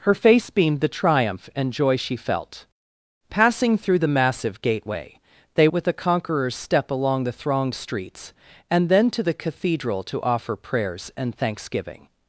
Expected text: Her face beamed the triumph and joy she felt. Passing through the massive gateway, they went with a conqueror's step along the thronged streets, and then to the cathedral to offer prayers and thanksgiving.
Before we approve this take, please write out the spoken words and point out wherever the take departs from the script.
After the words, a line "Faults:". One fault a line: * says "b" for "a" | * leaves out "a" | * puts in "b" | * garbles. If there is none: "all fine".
Her face beamed the triumph and joy she felt. Passing through the massive gateway, they with a conqueror's step along the thronged streets, and then to the cathedral to offer prayers and thanksgiving.
Faults:
* leaves out "went"